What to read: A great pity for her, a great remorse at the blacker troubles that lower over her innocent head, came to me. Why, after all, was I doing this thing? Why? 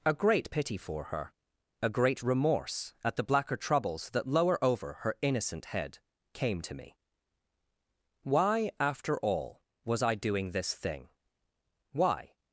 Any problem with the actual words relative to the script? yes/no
no